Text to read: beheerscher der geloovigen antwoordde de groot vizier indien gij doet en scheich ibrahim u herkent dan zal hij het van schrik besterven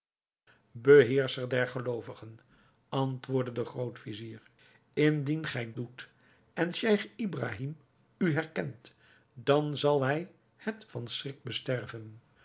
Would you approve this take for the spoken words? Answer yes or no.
yes